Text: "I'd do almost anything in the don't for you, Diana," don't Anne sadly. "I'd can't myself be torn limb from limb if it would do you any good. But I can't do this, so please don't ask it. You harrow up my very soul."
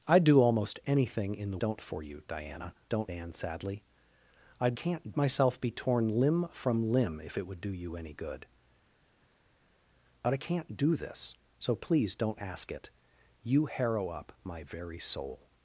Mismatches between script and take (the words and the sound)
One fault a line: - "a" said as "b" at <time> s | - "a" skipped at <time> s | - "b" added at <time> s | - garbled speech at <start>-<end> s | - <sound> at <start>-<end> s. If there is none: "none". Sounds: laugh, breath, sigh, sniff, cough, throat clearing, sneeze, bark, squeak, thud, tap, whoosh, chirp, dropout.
none